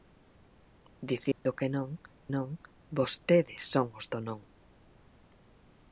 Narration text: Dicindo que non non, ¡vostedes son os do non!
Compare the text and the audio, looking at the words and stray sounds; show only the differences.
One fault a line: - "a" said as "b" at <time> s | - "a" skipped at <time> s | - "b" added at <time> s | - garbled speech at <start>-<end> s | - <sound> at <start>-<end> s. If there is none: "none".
- dropout at 1.3-1.5 s